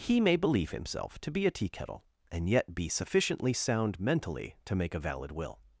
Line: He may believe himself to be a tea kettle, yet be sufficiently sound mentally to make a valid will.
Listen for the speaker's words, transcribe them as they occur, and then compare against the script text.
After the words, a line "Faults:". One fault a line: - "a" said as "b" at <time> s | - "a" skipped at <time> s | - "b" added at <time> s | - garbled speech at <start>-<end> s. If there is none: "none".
He may believe himself to be a tea kettle, and yet be sufficiently sound mentally to make a valid will.
Faults:
- "and" added at 2.3 s